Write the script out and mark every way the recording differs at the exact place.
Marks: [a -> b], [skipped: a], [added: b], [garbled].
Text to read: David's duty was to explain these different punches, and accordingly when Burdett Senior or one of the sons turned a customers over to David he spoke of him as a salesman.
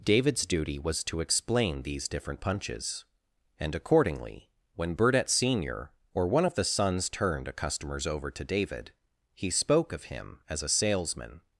David's duty was to explain these different punches, and accordingly when Burdett Senior or one of the sons turned a customers over to David he spoke of him as a salesman.